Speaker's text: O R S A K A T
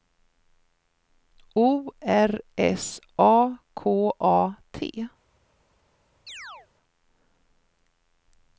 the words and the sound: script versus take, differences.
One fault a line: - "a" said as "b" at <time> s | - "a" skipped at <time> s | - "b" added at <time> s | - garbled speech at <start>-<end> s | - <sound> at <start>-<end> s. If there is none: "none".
- chirp at 6.3-6.7 s